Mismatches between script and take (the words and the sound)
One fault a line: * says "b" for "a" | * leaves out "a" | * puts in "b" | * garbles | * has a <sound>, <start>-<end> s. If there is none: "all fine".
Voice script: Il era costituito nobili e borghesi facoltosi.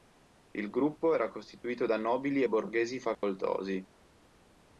* puts in "gruppo"
* puts in "da"
* has a dropout, 3.1-3.2 s